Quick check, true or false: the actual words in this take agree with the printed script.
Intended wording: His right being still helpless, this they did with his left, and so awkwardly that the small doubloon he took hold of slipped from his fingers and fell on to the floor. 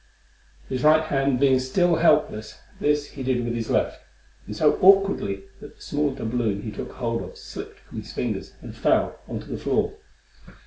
false